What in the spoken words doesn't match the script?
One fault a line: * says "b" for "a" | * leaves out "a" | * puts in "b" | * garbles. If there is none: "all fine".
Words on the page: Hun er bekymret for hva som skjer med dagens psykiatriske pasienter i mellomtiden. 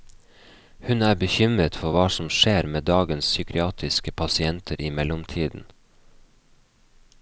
all fine